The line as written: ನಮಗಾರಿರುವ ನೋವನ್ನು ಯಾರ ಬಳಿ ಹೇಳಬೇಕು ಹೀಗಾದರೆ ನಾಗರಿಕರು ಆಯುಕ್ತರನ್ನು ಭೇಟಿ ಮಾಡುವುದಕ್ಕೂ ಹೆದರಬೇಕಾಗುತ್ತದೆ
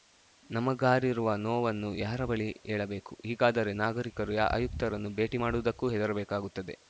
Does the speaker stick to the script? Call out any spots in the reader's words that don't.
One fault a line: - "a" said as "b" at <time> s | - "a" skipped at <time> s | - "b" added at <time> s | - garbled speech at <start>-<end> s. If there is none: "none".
none